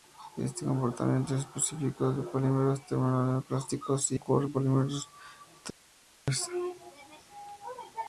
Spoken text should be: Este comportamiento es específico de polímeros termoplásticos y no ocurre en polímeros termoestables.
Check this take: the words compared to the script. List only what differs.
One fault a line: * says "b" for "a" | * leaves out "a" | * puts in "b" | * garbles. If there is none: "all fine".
* leaves out "no"